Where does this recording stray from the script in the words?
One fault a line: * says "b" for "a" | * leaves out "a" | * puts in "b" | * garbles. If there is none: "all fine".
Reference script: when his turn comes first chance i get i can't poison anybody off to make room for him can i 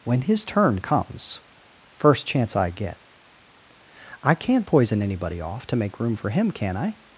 all fine